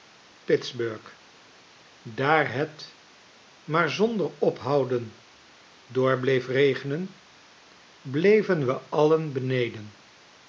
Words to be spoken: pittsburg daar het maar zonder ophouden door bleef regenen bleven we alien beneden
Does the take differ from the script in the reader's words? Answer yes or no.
no